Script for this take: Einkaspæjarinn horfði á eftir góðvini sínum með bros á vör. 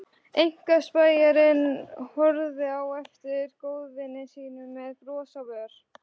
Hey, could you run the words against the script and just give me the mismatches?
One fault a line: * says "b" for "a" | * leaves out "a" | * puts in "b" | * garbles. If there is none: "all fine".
all fine